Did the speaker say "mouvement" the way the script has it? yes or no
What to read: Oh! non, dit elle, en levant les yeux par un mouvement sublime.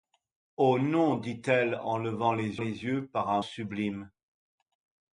no